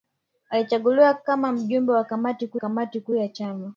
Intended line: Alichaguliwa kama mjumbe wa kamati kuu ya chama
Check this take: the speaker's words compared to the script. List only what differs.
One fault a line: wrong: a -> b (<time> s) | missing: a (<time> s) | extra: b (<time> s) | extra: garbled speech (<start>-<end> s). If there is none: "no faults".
extra: kamati kuu (2.5 s)